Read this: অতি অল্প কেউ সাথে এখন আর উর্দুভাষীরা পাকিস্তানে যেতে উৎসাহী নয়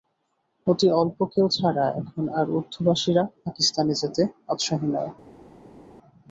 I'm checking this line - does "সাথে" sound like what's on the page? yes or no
no